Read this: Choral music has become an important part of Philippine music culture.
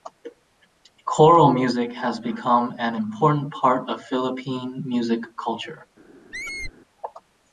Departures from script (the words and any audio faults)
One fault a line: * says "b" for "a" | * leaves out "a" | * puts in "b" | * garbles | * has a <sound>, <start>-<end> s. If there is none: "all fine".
* has a squeak, 6.3-6.7 s